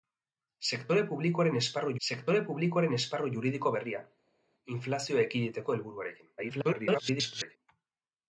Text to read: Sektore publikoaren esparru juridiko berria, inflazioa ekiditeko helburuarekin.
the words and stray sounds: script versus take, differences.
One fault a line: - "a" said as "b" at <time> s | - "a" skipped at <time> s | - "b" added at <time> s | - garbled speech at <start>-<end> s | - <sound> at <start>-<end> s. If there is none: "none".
- "sektore publikoaren esparru" added at 2.1 s
- garbled speech at 6.4-7.6 s